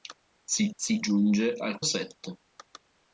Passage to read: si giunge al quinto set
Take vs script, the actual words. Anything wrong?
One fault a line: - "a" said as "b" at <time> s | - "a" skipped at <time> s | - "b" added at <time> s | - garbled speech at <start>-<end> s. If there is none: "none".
- "si" added at 0.7 s
- "quinto" skipped at 1.8 s